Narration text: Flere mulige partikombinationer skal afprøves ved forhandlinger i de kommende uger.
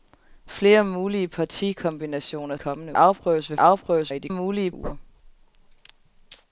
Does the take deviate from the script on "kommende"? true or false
true